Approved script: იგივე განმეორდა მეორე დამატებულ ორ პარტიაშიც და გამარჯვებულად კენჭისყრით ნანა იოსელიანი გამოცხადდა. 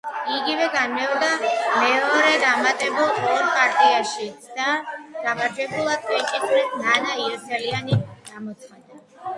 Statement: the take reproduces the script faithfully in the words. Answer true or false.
true